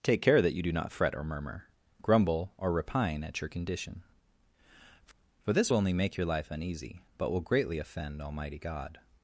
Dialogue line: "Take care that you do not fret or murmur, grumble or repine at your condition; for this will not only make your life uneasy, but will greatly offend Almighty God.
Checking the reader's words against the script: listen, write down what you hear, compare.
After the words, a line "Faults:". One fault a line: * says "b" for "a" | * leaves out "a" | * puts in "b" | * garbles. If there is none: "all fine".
"Take care that you do not fret or murmur, grumble or repine at your condition; for this will only make your life uneasy, but will greatly offend Almighty God.
Faults:
* leaves out "not"